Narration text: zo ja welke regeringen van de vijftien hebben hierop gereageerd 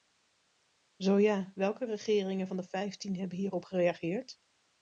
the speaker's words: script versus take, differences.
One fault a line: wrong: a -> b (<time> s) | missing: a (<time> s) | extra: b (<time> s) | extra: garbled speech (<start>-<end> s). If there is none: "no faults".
no faults